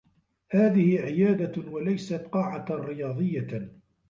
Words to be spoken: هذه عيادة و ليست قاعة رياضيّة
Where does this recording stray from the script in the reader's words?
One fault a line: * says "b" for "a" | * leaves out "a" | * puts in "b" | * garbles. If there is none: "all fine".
all fine